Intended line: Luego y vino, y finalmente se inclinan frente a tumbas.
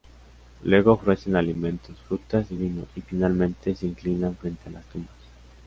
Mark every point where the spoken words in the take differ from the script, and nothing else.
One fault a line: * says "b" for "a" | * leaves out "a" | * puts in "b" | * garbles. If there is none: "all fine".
* puts in "ofrecen alimentos frutas"
* puts in "las"